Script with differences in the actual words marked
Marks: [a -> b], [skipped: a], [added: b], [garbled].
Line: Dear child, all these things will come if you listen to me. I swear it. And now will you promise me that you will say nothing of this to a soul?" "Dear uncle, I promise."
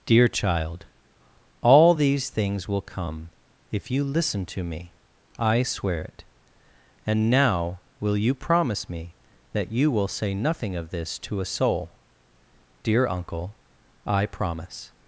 Dear child, all these things will come if you listen to me. I swear it. And now will you promise me that you will say nothing of this to a soul?" "Dear uncle, I promise."